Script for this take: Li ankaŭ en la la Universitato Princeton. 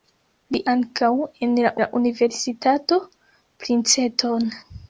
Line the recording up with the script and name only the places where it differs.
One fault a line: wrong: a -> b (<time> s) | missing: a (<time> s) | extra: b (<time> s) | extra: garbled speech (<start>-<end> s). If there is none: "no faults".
no faults